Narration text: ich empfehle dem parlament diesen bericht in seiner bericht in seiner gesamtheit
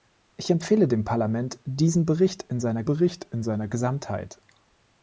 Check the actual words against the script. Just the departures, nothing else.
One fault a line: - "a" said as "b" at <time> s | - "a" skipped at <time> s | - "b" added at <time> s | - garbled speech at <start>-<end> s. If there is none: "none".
none